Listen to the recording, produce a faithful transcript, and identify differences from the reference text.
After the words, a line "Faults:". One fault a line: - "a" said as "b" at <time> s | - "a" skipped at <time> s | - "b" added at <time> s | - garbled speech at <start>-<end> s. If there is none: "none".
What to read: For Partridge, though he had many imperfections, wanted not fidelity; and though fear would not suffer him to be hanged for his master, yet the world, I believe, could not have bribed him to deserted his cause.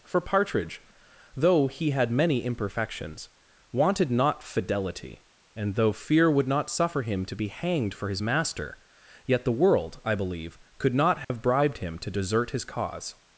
For Partridge, though he had many imperfections, wanted not fidelity; and though fear would not suffer him to be hanged for his master, yet the world, I believe, could not have bribed him to desert his cause.
Faults:
- "deserted" said as "desert" at 12.1 s